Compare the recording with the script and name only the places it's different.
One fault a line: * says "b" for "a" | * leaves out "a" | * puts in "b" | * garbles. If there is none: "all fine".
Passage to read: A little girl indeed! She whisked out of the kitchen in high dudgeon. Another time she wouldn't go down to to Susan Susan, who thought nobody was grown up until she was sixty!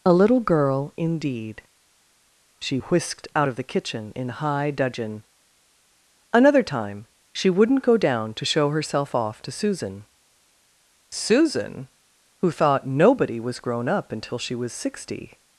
* puts in "show herself off"